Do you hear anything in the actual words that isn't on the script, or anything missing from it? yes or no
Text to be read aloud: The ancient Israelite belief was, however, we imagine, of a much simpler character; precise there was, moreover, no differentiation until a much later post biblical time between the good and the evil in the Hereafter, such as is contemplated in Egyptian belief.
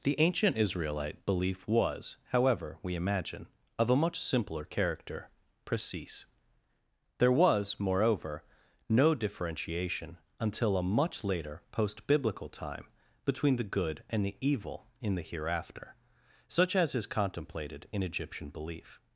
no